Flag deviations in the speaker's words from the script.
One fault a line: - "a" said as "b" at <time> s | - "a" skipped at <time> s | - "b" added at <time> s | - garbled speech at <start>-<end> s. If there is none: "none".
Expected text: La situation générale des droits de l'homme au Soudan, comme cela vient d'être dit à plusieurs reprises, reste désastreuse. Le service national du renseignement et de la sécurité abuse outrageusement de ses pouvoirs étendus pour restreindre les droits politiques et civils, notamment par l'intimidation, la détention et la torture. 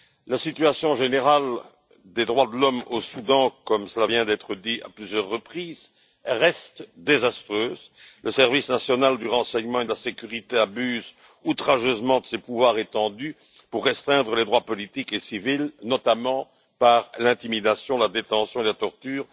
none